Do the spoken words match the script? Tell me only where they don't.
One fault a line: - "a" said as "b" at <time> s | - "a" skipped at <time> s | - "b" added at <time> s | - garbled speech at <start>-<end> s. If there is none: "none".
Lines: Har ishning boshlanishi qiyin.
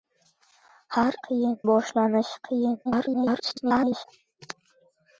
- "ishning" said as "qiyin" at 1.3 s
- garbled speech at 2.8-4.0 s